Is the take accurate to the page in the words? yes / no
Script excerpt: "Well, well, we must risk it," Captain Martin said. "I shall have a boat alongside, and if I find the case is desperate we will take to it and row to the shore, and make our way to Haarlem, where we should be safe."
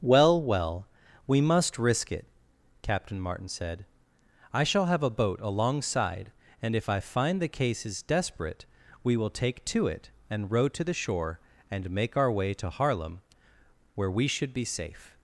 yes